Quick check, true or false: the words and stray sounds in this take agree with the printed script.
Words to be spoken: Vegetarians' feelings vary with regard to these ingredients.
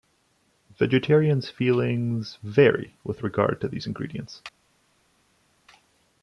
true